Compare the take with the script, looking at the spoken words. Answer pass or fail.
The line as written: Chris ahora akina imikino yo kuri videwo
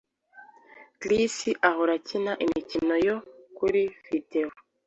pass